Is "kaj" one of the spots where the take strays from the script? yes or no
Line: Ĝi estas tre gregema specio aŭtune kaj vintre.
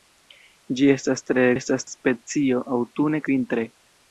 yes